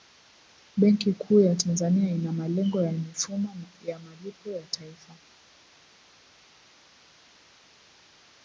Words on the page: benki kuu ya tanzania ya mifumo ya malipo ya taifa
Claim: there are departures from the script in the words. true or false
true